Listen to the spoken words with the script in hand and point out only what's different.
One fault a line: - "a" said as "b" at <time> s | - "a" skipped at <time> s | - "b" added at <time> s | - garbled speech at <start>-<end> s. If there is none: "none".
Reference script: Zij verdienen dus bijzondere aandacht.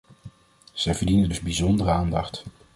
none